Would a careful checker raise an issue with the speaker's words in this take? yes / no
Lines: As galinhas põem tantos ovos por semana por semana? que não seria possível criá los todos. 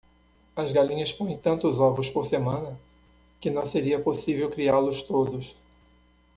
yes